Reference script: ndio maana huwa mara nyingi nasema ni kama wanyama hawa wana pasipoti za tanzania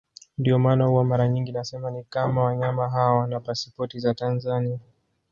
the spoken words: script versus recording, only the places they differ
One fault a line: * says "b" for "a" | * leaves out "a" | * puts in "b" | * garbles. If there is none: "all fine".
all fine